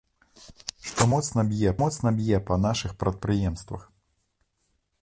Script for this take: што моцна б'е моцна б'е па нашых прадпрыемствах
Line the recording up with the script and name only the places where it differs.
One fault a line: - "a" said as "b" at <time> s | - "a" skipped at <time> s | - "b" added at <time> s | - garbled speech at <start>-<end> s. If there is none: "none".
none